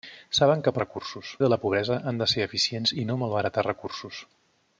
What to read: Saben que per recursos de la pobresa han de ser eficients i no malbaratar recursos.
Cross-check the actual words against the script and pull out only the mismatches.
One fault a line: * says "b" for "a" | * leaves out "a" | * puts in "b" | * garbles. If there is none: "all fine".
all fine